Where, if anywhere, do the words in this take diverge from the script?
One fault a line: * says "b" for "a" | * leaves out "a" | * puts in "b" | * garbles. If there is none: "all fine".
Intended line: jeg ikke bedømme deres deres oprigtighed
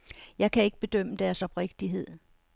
* puts in "kan"
* leaves out "deres"